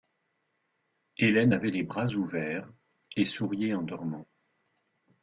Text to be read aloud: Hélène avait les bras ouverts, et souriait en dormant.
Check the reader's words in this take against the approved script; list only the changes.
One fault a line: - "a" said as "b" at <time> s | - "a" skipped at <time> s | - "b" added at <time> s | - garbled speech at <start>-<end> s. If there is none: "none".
none